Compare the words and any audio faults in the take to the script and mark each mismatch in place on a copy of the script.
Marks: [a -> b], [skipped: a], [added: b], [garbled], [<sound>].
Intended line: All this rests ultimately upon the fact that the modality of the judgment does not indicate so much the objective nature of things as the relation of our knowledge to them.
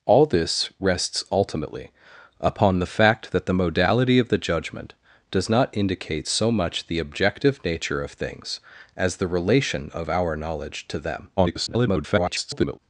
All this rests ultimately upon the fact that the modality of the judgment does not indicate so much the objective nature of things as the relation of our knowledge to them. [garbled]